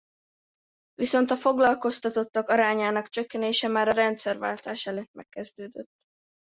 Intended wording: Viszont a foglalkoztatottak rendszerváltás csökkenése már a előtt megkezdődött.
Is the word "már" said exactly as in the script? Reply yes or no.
yes